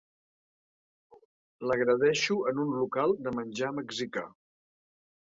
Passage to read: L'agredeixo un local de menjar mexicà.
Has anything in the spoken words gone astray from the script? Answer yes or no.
yes